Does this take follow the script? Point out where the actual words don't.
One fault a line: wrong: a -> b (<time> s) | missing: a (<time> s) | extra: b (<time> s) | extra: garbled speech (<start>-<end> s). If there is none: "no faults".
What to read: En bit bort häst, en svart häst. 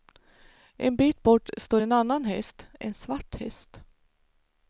extra: står en annan (1.6 s)